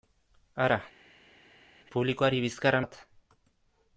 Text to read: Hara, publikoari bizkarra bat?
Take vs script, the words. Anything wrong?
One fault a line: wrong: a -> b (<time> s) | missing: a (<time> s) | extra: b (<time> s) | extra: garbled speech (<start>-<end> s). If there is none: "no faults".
no faults